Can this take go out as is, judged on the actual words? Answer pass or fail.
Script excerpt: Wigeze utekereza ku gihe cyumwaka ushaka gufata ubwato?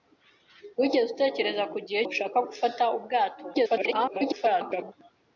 fail